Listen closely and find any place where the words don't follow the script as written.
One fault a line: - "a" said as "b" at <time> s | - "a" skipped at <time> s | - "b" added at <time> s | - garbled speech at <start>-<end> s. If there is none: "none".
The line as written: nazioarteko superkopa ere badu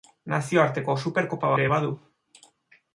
none